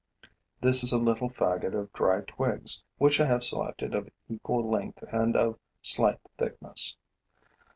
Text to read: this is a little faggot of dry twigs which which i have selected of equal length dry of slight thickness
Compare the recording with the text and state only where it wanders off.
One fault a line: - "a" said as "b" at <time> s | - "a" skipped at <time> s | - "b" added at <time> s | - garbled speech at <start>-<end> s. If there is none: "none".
- "which" skipped at 3.2 s
- "dry" said as "and" at 5.1 s